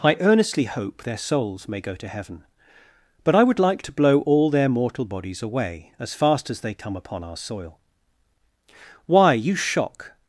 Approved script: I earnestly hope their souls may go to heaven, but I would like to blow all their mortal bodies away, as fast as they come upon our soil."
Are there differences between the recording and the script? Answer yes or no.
yes